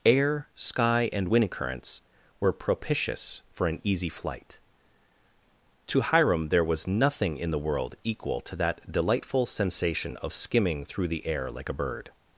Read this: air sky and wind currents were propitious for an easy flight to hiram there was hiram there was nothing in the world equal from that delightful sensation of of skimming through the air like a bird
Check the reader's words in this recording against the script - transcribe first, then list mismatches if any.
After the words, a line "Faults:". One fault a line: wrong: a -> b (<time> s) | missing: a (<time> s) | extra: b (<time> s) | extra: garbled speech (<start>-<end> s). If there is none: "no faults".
air sky and wind currents were propitious for an easy flight to hiram there was nothing in the world equal to that delightful sensation of skimming through the air like a bird
Faults:
missing: hiram there was (6.9 s)
wrong: from -> to (8.4 s)
missing: of (10.3 s)